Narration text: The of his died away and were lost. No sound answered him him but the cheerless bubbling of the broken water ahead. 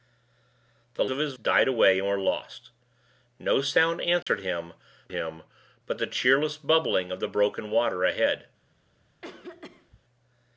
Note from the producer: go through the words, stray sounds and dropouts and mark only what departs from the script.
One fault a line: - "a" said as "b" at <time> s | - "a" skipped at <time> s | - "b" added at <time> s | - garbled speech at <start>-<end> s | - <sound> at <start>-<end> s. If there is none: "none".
- dropout at 4.2-4.3 s
- cough at 9.2-10.0 s